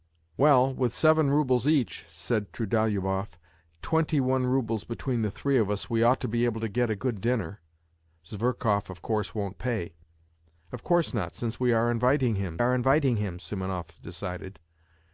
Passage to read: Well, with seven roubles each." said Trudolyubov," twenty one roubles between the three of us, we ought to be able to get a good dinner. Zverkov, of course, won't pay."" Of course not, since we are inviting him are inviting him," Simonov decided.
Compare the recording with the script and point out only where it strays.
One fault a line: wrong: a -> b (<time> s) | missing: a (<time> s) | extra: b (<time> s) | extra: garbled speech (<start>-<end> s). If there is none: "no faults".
no faults